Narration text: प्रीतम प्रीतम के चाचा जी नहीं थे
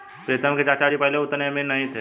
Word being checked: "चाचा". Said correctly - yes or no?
yes